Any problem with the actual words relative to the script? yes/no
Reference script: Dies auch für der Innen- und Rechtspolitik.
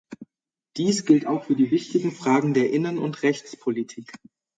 yes